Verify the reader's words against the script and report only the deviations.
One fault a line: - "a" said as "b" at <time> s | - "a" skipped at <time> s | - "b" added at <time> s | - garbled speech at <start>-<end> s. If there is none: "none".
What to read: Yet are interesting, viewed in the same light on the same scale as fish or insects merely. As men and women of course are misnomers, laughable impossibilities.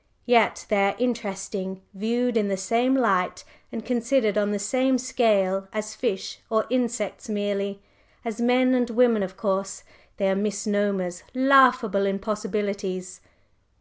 - "they" added at 0.7 s
- "and considered" added at 3.7 s
- "they" added at 10.1 s